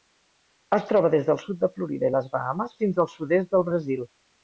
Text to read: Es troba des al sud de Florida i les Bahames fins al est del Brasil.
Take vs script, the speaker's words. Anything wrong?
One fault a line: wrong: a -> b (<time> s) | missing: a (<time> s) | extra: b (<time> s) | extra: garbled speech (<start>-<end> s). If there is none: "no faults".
wrong: al -> del (1.3 s)
extra: sud (3.2 s)